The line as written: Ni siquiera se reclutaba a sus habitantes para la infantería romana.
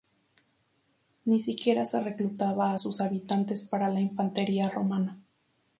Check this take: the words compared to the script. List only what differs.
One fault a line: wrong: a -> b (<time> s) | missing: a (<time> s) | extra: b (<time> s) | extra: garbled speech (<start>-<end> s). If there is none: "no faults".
no faults